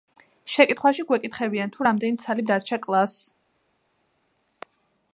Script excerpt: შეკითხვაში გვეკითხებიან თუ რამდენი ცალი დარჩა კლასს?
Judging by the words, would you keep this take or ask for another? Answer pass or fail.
pass